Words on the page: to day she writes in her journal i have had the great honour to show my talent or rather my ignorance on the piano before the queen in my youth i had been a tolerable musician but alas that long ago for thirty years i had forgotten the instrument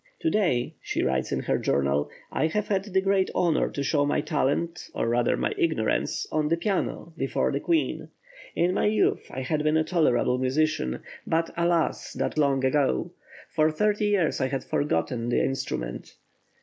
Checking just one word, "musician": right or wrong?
right